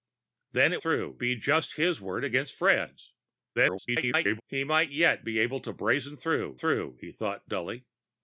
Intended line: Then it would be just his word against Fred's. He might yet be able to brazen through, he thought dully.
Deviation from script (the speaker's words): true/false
true